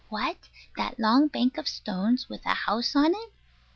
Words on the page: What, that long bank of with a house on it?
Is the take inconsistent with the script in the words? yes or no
yes